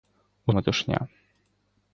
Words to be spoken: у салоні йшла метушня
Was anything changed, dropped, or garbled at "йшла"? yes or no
yes